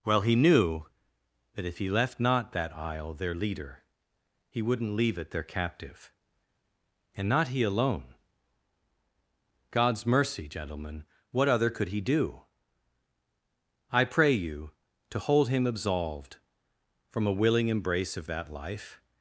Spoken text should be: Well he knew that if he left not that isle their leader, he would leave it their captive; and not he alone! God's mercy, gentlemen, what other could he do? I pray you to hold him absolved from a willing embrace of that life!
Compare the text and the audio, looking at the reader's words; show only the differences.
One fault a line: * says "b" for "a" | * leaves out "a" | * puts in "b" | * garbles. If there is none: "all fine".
* says "wouldn't" for "would"